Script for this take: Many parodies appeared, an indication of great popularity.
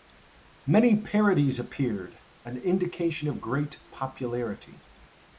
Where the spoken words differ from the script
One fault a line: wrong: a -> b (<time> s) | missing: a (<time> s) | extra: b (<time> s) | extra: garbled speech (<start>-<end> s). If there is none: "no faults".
no faults